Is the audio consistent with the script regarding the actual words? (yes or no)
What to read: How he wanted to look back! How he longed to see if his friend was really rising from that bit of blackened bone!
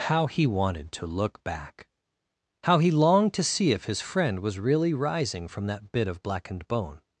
yes